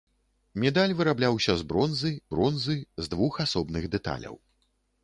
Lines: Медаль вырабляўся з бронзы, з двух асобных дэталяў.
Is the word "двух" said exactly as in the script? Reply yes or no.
yes